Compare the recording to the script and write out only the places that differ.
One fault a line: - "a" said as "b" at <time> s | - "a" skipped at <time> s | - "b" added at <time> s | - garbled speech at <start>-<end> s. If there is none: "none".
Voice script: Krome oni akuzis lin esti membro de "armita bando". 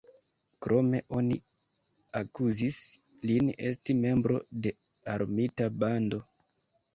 none